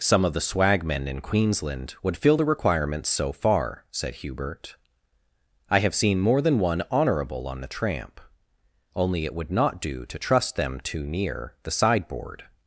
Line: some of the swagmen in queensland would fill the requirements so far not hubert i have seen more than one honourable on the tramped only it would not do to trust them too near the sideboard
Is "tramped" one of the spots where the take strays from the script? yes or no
yes